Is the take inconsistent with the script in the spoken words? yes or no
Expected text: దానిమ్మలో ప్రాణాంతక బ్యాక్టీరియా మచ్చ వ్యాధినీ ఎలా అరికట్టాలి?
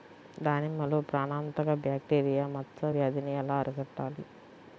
no